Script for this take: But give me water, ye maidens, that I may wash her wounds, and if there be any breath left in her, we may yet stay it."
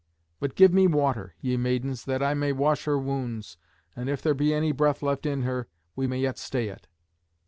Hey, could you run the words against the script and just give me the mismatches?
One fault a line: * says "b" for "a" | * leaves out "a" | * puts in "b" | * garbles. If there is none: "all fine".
all fine